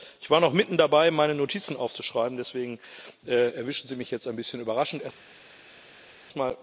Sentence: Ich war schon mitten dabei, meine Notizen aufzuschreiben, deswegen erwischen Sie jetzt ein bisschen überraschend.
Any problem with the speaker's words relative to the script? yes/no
yes